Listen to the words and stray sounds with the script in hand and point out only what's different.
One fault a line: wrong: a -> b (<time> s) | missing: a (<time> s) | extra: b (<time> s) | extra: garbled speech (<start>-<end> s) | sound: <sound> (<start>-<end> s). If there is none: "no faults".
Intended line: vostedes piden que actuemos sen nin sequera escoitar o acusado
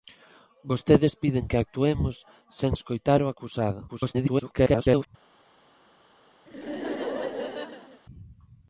missing: nin sequera (2.7 s)
extra: garbled speech (3.9-5.1 s)
sound: laugh (6.5-8.0 s)